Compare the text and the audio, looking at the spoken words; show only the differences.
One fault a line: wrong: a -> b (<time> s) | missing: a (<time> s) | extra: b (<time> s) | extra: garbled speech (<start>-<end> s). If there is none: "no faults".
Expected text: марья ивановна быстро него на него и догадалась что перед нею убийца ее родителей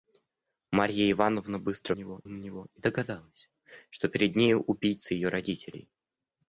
no faults